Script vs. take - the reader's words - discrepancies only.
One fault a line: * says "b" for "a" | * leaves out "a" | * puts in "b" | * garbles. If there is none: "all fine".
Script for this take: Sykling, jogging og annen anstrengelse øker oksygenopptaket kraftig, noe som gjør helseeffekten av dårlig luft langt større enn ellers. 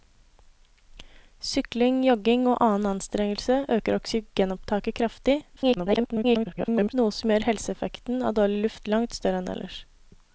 * garbles